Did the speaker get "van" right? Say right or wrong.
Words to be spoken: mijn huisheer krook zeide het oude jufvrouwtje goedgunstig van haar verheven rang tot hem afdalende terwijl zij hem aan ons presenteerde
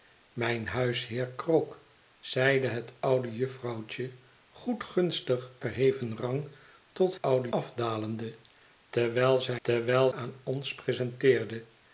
wrong